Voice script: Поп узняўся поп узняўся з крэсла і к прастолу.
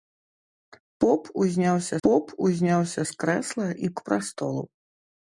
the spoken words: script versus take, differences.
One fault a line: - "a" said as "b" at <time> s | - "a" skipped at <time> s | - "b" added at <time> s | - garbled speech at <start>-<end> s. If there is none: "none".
none